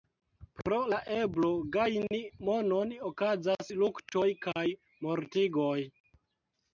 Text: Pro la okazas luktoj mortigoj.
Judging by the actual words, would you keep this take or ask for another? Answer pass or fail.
fail